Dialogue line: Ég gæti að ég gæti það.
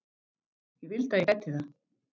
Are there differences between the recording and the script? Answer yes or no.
yes